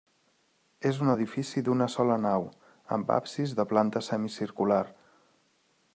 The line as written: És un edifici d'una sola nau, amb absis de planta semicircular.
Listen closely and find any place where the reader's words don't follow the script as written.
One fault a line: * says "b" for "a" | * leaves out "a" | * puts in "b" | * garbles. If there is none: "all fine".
all fine